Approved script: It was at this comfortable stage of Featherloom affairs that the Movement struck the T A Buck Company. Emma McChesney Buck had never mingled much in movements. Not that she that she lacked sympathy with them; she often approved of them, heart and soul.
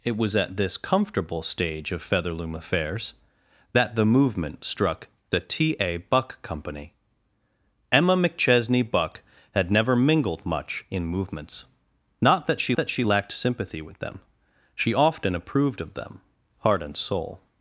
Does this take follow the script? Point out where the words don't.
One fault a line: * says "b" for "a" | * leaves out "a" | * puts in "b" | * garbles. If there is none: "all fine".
all fine